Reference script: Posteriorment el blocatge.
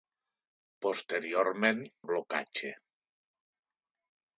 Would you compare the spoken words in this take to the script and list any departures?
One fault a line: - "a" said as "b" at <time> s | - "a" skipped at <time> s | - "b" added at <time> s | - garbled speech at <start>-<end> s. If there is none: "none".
none